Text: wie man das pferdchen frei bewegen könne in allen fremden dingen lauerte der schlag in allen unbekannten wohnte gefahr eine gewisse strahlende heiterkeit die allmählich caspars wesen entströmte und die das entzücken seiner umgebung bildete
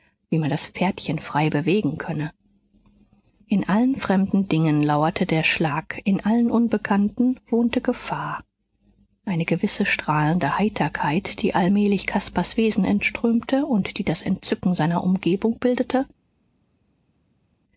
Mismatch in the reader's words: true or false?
false